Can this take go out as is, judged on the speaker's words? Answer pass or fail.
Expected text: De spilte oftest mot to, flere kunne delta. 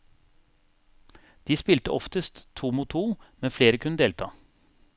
fail